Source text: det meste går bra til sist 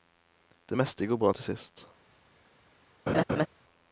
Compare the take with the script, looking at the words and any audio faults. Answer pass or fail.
fail